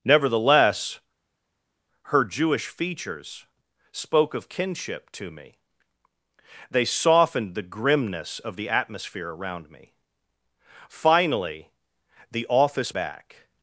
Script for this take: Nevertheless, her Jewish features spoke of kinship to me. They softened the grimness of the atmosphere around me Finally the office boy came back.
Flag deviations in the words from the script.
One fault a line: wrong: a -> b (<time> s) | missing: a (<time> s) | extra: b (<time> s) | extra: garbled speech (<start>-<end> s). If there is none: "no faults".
missing: boy came (12.9 s)